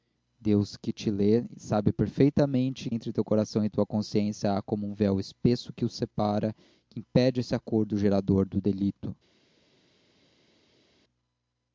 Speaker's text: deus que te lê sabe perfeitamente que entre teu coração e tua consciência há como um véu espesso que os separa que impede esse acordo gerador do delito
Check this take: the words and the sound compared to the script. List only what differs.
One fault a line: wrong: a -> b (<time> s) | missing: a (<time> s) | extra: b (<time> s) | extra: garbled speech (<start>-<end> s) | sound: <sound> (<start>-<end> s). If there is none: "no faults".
missing: que (2.9 s)